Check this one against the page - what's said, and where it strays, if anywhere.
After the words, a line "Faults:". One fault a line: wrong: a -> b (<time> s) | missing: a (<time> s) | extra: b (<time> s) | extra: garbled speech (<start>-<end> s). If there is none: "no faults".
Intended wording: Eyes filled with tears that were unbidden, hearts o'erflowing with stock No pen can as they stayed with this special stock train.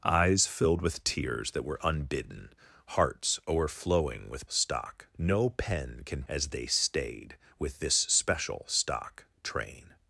Eyes filled with tears that were unbidden, hearts o'erflowing with stock No pen can as they stayed with this special stock train.
Faults:
no faults